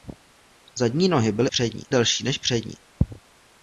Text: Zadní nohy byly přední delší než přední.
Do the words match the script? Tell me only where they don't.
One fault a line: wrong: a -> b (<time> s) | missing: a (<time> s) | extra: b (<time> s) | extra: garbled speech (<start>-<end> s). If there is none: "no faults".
no faults